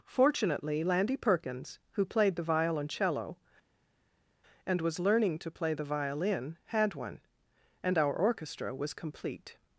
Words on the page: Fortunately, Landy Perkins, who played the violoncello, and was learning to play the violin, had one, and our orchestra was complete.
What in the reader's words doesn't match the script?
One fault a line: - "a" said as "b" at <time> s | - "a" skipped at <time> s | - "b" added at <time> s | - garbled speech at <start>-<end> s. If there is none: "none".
none